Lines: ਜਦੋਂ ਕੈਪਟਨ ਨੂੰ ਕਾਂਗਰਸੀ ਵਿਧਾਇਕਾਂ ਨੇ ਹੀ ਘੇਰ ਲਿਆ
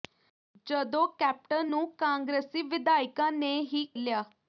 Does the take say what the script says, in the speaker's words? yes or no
no